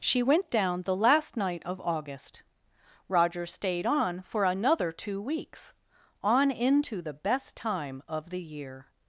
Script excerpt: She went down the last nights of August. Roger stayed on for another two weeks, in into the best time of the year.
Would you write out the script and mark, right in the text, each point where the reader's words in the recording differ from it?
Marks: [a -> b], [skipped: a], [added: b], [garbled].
She went down the last [nights -> night] of August. Roger stayed on for another two weeks, [in -> on] into the best time of the year.